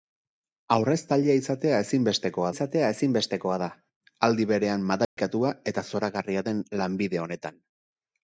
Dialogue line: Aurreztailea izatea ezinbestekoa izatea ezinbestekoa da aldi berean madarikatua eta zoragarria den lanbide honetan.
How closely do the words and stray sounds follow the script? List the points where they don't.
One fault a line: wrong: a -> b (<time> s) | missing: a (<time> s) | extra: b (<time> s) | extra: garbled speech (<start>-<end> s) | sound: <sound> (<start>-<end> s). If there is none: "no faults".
sound: dropout (5.0-5.2 s)